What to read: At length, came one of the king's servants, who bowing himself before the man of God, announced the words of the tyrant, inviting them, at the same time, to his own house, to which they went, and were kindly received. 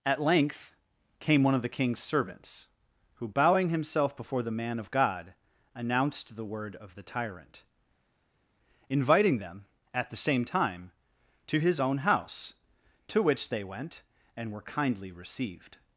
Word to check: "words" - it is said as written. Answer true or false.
false